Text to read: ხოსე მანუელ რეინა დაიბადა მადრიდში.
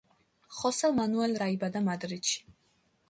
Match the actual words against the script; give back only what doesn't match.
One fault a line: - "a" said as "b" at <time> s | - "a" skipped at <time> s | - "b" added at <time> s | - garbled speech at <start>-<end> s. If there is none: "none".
- "რეინა" skipped at 1.4 s